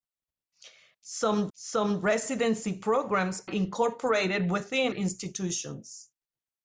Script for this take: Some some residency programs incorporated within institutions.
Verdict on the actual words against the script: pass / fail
pass